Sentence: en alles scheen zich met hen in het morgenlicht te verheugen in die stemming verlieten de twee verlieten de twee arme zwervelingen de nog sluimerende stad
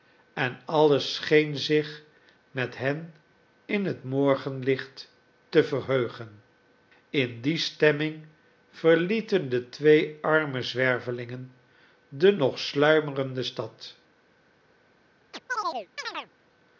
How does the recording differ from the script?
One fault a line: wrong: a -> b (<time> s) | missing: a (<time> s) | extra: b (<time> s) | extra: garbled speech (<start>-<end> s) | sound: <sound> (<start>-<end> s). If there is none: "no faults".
missing: verlieten de twee (10.2 s)
sound: chirp (15.3-16.3 s)